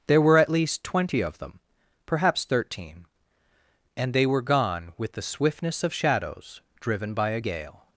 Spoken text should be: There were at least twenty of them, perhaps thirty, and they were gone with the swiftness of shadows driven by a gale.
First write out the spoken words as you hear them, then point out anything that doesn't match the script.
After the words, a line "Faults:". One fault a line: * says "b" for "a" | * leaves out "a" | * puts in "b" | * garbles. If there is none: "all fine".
There were at least twenty of them, perhaps thirteen, and they were gone with the swiftness of shadows driven by a gale.
Faults:
* says "thirteen" for "thirty"